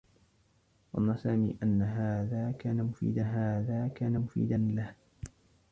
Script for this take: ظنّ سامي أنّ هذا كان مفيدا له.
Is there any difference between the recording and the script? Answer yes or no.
yes